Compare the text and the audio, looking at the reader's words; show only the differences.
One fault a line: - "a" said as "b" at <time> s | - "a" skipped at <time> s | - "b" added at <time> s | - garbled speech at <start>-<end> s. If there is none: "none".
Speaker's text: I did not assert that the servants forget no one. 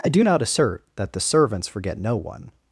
- "did" said as "do" at 0.1 s